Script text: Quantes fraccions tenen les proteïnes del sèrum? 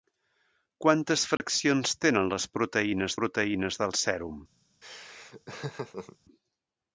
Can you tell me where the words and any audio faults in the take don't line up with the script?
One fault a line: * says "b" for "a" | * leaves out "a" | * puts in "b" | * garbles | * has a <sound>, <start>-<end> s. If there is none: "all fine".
* has a dropout, 1.4-1.4 s
* puts in "proteïnes"
* has a laugh, 4.8-6.2 s